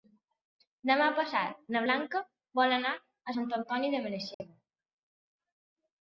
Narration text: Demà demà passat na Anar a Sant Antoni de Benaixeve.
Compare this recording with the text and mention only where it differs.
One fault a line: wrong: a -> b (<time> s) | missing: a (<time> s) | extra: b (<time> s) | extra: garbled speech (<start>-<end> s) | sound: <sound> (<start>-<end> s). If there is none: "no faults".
missing: demà (1.1 s)
extra: Blanca vol (1.8 s)
sound: dropout (4.3-4.4 s)